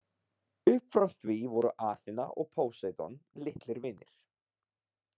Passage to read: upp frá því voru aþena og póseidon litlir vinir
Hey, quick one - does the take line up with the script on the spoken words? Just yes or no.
yes